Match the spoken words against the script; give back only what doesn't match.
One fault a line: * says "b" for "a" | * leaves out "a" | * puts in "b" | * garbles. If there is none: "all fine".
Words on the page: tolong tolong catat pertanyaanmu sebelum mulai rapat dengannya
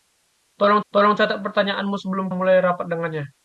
all fine